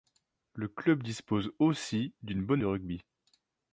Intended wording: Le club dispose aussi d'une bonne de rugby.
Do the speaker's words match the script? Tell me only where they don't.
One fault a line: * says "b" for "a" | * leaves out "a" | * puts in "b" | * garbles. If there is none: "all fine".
all fine